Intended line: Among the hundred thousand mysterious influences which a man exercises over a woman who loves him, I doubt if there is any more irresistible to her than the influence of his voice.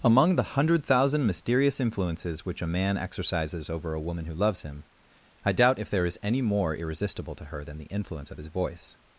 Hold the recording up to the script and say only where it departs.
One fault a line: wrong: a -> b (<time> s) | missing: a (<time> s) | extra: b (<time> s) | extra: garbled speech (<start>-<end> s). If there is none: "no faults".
no faults